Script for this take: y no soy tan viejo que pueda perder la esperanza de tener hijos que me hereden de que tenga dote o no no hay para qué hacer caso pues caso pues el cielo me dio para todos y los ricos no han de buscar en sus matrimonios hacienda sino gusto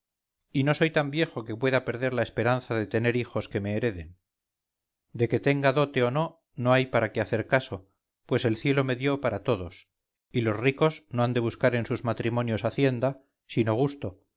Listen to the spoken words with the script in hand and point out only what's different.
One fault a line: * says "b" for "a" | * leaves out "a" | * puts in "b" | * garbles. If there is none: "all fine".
* leaves out "caso pues"